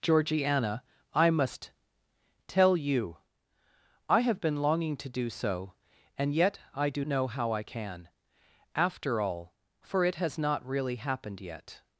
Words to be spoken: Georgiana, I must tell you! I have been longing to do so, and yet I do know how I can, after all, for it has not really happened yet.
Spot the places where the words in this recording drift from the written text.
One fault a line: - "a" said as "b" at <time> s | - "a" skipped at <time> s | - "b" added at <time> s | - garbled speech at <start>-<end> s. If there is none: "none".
none